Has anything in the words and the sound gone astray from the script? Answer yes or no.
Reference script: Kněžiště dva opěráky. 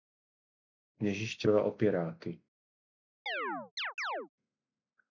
yes